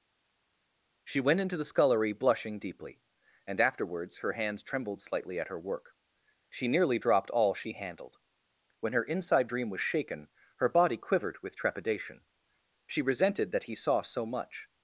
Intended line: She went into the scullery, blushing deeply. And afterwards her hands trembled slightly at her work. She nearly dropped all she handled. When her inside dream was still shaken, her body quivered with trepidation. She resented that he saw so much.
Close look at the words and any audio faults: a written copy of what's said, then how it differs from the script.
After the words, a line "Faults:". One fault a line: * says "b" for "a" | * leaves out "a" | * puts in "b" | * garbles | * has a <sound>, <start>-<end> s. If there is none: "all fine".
She went into the scullery, blushing deeply. And afterwards her hands trembled slightly at her work. She nearly dropped all she handled. When her inside dream was shaken, her body quivered with trepidation. She resented that he saw so much.
Faults:
* leaves out "still"